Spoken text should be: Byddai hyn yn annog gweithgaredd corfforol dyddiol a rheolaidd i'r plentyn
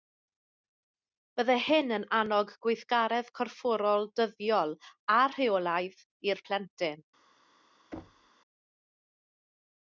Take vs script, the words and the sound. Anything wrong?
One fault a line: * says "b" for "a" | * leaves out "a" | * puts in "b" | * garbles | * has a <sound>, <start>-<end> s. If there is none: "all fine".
* has a thud, 7.9-8.3 s